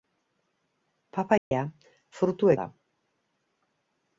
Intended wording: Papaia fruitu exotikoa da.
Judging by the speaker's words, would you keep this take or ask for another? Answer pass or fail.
fail